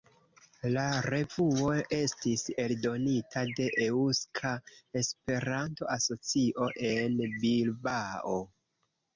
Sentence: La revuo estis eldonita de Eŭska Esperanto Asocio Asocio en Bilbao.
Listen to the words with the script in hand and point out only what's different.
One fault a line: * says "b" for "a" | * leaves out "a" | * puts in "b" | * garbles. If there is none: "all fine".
* leaves out "Asocio"